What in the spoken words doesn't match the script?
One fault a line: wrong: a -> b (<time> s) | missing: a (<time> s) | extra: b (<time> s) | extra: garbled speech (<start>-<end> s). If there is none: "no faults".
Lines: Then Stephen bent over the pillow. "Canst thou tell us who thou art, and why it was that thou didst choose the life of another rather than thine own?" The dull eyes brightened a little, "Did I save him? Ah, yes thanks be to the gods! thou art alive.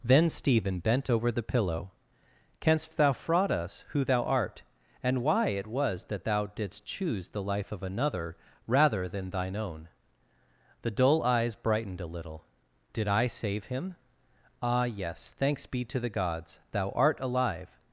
wrong: tell -> fraud (3.1 s)